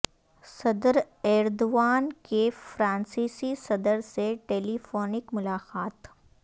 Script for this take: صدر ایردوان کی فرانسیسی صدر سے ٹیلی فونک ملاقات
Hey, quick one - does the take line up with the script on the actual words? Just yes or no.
yes